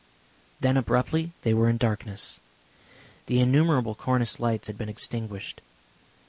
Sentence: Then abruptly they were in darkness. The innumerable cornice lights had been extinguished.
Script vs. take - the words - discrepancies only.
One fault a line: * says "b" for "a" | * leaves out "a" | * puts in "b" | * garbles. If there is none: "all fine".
all fine